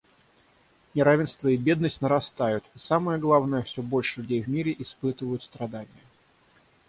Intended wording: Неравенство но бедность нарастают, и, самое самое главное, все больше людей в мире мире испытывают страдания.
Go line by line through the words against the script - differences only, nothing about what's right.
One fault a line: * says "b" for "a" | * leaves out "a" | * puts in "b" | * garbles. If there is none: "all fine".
* says "и" for "но"
* leaves out "самое"
* leaves out "мире"